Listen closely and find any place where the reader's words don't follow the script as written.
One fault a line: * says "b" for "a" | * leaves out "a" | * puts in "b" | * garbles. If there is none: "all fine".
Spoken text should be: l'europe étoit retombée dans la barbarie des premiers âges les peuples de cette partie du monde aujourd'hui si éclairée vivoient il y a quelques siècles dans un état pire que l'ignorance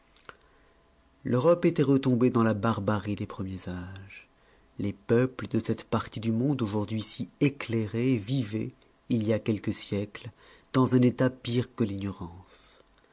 all fine